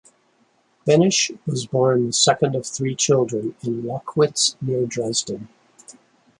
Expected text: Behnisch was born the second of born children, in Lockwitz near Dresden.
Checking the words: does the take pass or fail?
fail